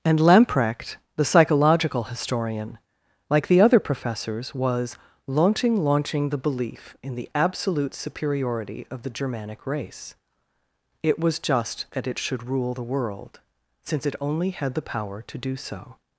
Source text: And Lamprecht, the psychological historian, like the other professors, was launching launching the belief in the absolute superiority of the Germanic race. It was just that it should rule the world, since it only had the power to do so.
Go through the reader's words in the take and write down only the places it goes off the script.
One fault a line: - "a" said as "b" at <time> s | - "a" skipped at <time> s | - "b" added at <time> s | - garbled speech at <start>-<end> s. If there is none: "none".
none